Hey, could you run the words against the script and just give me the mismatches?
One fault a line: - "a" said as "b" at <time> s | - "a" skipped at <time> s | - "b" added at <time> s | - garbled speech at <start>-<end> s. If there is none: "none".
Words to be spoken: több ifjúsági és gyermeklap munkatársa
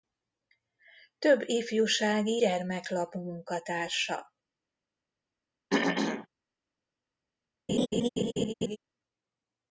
- "és" skipped at 2.4 s